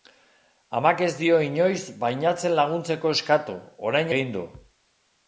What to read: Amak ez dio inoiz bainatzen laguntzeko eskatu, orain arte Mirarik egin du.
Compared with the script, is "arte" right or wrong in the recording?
wrong